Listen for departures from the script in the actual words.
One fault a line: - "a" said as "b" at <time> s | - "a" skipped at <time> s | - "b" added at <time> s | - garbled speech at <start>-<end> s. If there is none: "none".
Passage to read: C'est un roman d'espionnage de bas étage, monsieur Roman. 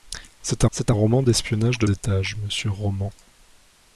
- "c'est" added at 0.7 s
- "bas" skipped at 1.9 s